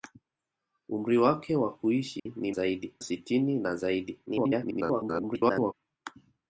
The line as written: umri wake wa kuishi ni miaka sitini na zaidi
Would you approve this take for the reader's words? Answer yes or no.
no